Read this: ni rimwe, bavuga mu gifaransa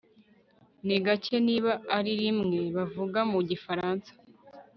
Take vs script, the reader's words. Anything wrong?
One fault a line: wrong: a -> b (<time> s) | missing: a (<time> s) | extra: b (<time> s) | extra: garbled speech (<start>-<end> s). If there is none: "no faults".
extra: gake niba ari (1.1 s)